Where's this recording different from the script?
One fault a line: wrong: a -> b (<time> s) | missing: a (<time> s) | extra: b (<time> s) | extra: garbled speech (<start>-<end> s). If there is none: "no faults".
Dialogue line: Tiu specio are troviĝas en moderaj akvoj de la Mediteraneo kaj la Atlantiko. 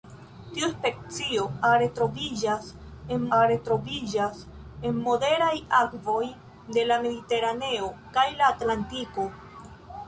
extra: are troviĝas en (3.4 s)